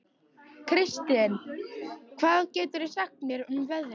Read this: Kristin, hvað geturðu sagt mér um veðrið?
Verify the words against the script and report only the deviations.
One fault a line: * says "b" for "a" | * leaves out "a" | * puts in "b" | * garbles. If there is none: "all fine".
all fine